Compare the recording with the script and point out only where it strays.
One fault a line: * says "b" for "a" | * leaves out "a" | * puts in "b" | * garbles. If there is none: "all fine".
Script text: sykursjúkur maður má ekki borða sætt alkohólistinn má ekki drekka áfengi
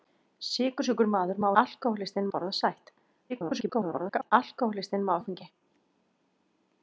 * says "alkohólistinn" for "ekki"
* garbles
* leaves out "ekki drekka"